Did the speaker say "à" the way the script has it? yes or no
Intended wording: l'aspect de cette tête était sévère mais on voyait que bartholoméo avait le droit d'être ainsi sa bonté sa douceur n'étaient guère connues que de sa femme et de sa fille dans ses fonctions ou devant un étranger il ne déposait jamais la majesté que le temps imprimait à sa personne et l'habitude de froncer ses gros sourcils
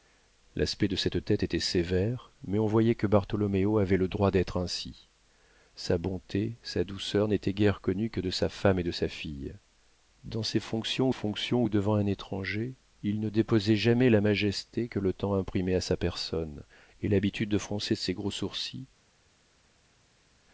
yes